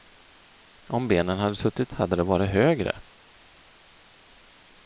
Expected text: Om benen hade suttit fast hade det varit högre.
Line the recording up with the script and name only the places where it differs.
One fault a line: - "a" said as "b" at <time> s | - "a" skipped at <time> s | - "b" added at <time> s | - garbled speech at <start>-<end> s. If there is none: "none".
- "fast" skipped at 1.9 s